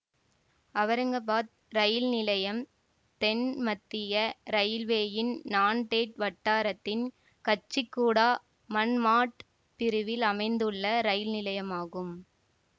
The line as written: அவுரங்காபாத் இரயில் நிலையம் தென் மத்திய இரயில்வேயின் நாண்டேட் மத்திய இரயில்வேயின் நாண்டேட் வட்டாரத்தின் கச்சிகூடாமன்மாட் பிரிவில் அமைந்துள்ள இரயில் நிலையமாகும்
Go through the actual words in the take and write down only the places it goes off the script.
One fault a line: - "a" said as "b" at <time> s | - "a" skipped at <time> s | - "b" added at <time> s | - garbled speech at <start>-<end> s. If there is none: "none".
- "மத்திய இரயில்வேயின் நாண்டேட்" skipped at 6.2 s